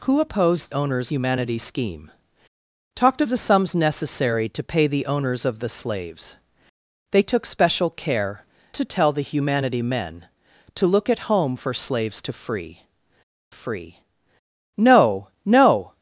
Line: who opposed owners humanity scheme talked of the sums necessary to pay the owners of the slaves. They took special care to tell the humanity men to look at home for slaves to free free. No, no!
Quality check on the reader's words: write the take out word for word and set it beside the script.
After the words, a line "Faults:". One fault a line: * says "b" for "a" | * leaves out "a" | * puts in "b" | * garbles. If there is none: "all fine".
who opposed owners humanity scheme talked of the sums necessary to pay the owners of the slaves. They took special care to tell the humanity men to look at home for slaves to free free. No, no!
Faults:
all fine